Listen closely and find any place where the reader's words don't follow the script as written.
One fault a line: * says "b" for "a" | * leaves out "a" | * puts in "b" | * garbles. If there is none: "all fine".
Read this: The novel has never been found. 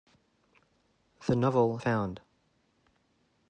* leaves out "has never been"